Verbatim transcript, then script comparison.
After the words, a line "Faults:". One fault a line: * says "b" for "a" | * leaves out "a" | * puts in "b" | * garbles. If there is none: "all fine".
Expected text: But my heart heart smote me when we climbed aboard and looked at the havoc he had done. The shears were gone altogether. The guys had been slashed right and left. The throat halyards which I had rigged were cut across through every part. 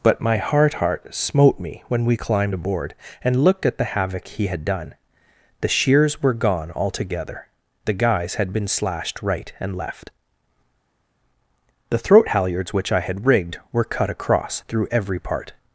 But my heart heart smote me when we climbed aboard and looked at the havoc he had done. The shears were gone altogether. The guys had been slashed right and left. The throat halyards which I had rigged were cut across through every part.
Faults:
all fine